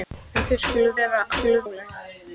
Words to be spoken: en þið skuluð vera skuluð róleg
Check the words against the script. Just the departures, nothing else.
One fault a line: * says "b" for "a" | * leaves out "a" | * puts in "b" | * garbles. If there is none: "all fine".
all fine